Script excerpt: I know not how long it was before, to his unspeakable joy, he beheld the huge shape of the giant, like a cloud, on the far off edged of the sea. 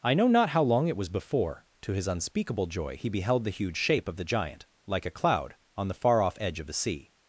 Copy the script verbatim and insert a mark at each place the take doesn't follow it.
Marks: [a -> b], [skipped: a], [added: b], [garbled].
I know not how long it was before, to his unspeakable joy, he beheld the huge shape of the giant, like a cloud, on the far off [edged -> edge] of the sea.